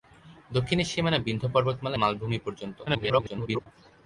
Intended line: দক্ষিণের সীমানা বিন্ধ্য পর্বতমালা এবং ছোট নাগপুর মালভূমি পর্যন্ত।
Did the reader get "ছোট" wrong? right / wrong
wrong